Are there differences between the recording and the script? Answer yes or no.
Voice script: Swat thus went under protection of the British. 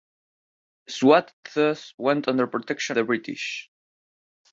yes